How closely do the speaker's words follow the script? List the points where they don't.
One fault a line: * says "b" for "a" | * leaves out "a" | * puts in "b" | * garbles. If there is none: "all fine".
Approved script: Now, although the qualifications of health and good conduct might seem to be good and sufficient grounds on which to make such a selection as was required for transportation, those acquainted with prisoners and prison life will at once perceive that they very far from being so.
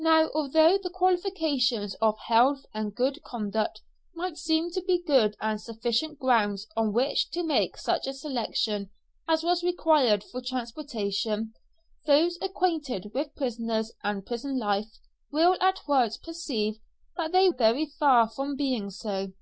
all fine